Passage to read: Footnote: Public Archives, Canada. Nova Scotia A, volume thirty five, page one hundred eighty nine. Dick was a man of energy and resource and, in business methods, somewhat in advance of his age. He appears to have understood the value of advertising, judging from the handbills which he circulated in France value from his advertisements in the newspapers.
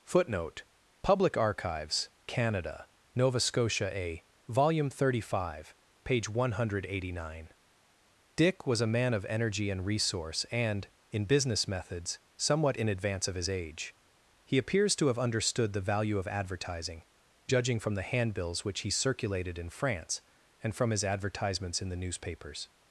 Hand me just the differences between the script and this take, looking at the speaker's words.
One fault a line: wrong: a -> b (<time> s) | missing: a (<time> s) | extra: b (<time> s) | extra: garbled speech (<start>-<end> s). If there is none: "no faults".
wrong: value -> and (20.6 s)